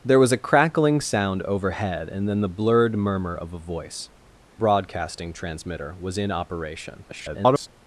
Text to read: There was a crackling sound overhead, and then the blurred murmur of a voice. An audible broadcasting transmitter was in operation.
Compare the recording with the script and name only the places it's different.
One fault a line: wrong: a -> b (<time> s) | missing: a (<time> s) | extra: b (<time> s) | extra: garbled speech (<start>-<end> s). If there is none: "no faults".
missing: An audible (4.1 s)
extra: garbled speech (7.1-7.7 s)